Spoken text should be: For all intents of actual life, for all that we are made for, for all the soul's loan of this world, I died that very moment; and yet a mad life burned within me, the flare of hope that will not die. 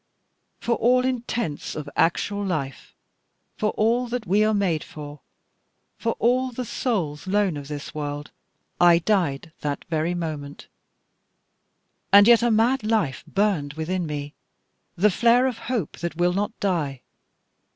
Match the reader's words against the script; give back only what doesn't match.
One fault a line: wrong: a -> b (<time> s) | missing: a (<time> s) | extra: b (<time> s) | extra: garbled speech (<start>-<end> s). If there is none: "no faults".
no faults